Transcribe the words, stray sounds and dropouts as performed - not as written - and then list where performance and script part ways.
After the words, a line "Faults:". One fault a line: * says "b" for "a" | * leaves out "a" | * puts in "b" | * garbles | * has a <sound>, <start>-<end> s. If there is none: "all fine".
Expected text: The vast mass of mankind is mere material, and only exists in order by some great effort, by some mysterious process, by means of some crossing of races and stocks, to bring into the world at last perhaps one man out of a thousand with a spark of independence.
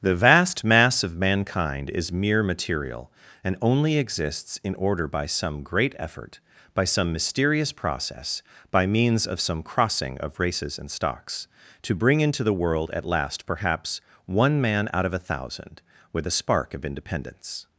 The vast mass of mankind is mere material, and only exists in order by some great effort, by some mysterious process, by means of some crossing of races and stocks, to bring into the world at last perhaps one man out of a thousand with a spark of independence.
Faults:
all fine